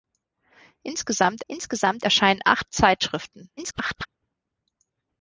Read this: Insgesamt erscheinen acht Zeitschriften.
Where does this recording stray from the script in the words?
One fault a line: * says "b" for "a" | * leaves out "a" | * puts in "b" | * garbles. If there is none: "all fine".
* puts in "insgesamt"
* garbles